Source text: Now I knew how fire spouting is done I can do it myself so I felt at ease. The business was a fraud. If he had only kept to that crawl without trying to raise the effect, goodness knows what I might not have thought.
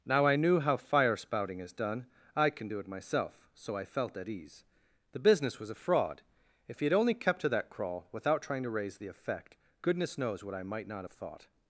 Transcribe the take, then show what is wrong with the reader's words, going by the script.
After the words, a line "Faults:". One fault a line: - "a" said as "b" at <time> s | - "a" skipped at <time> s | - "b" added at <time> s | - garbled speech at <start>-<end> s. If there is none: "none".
Now I knew how fire spouting is done I can do it myself so I felt at ease. The business was a fraud. If he had only kept to that crawl without trying to raise the effect, goodness knows what I might not have thought.
Faults:
none